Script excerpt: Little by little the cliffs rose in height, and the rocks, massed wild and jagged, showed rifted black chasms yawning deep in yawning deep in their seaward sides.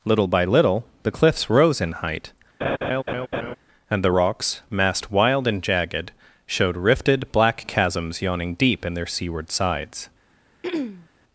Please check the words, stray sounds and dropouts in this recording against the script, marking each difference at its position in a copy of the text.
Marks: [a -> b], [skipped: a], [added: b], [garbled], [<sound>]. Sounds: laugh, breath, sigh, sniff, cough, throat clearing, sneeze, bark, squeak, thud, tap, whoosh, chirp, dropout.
Little by little the cliffs rose in height, [laugh] and the rocks, massed wild and jagged, showed rifted black chasms yawning deep in [skipped: yawning deep in] their seaward sides. [throat clearing]